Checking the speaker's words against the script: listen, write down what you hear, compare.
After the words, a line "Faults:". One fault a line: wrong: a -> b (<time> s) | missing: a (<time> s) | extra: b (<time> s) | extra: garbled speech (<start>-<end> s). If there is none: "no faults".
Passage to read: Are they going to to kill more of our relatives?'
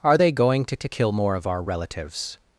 Are they going to to kill more of our relatives?'
Faults:
no faults